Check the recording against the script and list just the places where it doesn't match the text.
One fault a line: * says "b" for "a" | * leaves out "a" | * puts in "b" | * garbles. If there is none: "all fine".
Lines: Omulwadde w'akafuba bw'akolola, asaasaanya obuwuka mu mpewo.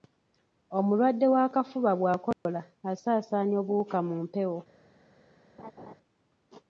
all fine